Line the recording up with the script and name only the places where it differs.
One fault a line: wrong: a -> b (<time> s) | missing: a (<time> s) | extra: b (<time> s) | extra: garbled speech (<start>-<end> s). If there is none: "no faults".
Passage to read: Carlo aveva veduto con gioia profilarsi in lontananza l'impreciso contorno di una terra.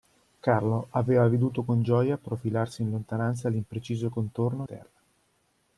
missing: di una (4.7 s)